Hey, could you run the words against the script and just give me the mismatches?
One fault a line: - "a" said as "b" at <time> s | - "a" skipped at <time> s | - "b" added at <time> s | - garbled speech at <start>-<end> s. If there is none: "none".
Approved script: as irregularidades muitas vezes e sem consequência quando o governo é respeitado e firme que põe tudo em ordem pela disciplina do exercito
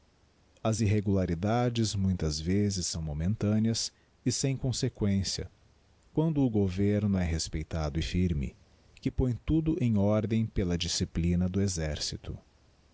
- "são momentâneas" added at 2.9 s